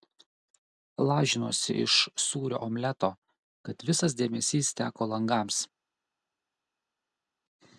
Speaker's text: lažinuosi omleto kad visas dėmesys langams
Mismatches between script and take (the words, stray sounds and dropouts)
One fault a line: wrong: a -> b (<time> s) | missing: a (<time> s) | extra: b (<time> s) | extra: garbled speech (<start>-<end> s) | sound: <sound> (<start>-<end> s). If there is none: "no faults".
extra: iš sūrio (1.8 s)
extra: teko (4.8 s)